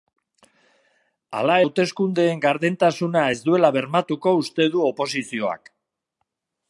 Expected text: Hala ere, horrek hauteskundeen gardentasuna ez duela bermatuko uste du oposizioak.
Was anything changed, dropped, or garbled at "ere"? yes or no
yes